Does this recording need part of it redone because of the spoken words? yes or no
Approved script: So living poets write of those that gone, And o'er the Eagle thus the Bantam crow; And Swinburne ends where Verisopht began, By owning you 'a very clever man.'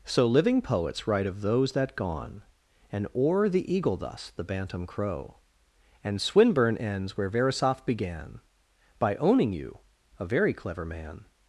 no